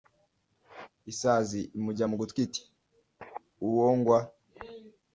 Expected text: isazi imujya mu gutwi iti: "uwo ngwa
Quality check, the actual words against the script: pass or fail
pass